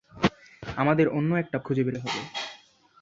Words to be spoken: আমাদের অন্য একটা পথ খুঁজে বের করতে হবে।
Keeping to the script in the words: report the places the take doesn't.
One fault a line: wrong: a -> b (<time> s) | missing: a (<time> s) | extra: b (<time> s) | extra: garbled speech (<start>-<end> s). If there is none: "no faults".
missing: পথ (1.6 s)
missing: করতে (2.0 s)